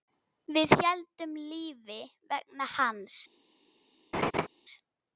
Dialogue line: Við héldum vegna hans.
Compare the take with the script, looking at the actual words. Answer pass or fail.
fail